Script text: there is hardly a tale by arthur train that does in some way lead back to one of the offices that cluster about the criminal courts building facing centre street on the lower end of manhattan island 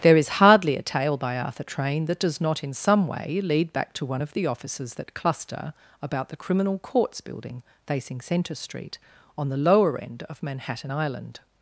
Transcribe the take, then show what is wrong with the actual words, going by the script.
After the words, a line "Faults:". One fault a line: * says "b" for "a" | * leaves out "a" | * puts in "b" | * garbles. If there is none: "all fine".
there is hardly a tale by arthur train that does not in some way lead back to one of the offices that cluster about the criminal courts building facing centre street on the lower end of manhattan island
Faults:
* puts in "not"